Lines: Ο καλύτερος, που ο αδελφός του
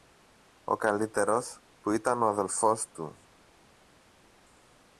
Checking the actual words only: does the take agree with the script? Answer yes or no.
no